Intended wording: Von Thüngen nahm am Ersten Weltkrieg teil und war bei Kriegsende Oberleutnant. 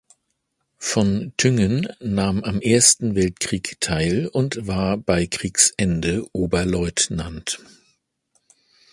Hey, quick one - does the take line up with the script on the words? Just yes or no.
yes